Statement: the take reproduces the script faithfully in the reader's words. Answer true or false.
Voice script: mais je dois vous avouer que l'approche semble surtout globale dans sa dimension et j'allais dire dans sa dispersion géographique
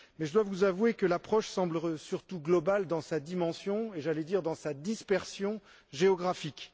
true